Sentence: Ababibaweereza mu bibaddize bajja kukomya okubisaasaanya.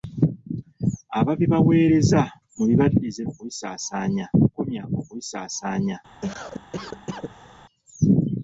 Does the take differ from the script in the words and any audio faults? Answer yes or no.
yes